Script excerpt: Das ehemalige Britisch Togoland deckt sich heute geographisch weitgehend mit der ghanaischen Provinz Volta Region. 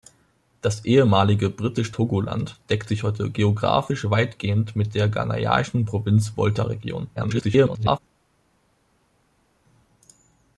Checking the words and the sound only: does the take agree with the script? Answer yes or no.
no